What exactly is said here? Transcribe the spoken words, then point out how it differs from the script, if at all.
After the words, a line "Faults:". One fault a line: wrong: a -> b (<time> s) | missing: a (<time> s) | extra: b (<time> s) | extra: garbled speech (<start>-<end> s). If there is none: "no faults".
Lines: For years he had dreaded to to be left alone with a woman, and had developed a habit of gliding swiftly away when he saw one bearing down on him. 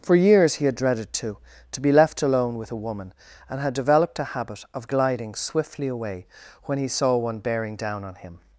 For years he had dreaded to to be left alone with a woman, and had developed a habit of gliding swiftly away when he saw one bearing down on him.
Faults:
no faults